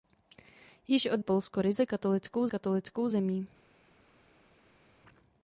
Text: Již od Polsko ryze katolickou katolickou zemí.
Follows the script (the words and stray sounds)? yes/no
yes